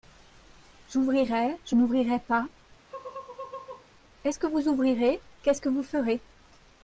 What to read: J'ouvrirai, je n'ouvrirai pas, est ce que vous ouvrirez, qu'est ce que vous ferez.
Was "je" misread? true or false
false